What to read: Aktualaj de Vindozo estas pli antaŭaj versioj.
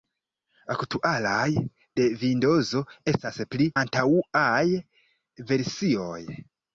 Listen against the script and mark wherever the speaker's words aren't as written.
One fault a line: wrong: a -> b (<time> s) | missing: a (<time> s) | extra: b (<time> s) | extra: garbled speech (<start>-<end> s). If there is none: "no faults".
no faults